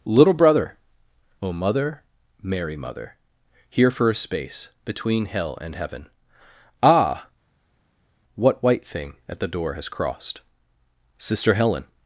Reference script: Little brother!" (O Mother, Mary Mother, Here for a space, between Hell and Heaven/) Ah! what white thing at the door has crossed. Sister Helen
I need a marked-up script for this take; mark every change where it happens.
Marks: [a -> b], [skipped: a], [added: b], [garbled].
Little brother!" (O Mother, Mary Mother, Here for a space, between Hell and Heaven/) Ah! what white thing at the door has crossed. Sister Helen